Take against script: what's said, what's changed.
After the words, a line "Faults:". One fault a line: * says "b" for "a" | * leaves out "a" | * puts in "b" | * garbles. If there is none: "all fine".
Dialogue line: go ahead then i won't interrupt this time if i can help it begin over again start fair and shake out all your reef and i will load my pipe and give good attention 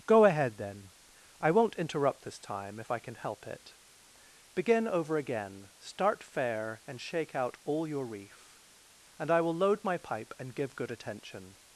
go ahead then i won't interrupt this time if i can help it begin over again start fair and shake out all your reef and i will load my pipe and give good attention
Faults:
all fine